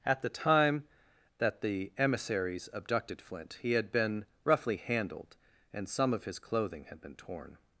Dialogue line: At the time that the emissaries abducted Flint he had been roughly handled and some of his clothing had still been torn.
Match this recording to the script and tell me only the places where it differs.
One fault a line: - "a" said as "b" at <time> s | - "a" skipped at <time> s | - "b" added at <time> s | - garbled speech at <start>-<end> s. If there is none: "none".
- "still" skipped at 7.0 s